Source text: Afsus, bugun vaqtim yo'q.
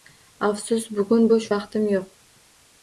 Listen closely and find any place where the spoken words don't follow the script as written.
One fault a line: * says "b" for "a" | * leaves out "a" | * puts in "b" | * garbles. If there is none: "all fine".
* puts in "bo'sh"